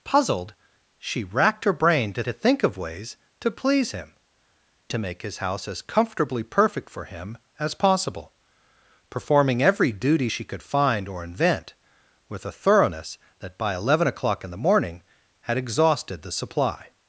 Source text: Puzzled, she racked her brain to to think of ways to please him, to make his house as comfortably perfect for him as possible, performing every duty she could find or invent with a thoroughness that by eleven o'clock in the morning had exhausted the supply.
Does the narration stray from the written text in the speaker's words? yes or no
no